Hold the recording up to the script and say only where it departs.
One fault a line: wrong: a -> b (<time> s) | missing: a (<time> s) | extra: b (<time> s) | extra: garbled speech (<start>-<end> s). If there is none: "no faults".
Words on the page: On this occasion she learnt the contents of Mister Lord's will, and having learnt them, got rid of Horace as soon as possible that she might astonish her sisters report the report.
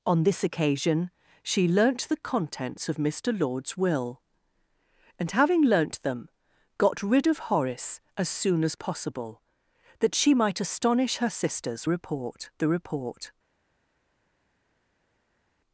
no faults